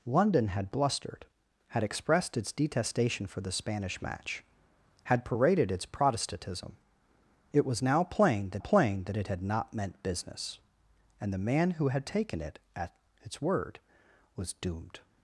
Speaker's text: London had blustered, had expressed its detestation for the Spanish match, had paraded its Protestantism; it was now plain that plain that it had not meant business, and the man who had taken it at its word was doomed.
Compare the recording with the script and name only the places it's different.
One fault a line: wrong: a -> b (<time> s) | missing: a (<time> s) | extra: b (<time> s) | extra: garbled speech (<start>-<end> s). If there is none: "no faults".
no faults